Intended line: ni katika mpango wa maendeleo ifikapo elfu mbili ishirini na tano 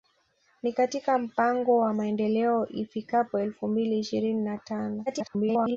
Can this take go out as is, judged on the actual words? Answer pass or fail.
fail